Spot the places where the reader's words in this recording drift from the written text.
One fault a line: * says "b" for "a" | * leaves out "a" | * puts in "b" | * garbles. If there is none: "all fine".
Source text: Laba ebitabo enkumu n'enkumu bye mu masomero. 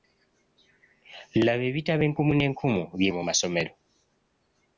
all fine